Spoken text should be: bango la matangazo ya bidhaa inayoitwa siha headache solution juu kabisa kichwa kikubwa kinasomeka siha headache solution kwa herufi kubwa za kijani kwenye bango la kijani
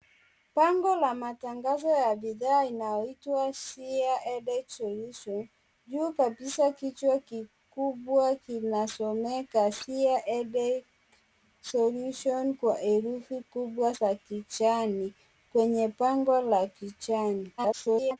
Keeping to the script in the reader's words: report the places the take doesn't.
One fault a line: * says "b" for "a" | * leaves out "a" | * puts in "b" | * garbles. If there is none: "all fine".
* garbles